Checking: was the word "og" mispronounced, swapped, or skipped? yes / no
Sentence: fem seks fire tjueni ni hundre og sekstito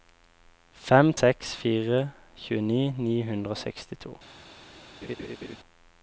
no